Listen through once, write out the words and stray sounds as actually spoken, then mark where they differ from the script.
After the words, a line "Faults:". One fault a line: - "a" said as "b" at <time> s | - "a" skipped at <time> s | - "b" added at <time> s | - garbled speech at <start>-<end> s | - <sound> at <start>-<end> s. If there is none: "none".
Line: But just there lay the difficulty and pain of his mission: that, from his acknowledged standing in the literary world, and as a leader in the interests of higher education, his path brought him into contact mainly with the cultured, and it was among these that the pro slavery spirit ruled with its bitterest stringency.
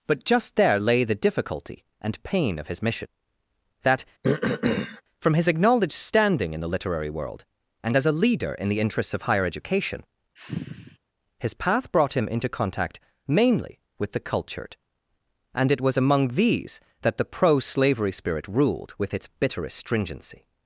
But just there lay the difficulty and pain of his mission: that, from his acknowledged standing in the literary world, and as a leader in the interests of higher education, his path brought him into contact mainly with the cultured, and it was among these that the pro slavery spirit ruled with its bitterest stringency.
Faults:
- throat clearing at 4.2-5.0 s
- sigh at 10.4-11.0 s